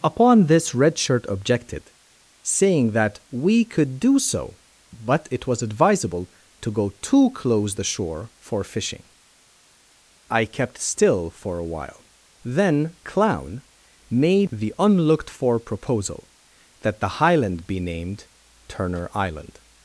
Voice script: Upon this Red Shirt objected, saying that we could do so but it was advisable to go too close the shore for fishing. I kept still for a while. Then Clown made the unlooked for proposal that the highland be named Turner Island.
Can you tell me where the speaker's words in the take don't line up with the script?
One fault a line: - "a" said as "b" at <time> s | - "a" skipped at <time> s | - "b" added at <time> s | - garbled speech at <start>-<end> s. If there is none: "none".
none